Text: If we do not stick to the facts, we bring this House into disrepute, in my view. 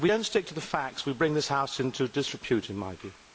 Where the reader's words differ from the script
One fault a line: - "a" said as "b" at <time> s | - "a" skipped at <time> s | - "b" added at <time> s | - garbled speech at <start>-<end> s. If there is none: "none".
none